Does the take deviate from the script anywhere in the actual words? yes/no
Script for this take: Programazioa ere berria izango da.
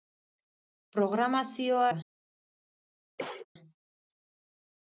yes